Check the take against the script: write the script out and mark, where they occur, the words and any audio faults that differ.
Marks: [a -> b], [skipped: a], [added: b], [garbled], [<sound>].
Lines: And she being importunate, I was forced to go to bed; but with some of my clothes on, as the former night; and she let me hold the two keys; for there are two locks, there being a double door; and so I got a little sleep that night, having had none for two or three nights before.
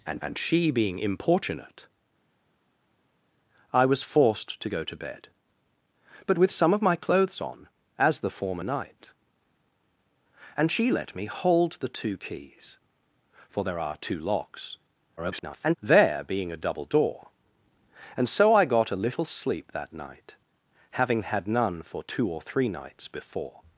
And [added: and] she being importunate, I was forced to go to bed; but with some of my clothes on, as the former night; and she let me hold the two keys; for there are two locks, [garbled] there being a double door; and so I got a little sleep that night, having had none for two or three nights before.